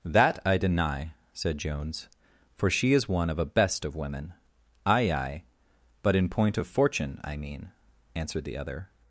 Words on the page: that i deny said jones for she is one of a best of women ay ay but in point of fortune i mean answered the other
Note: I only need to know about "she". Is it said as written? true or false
true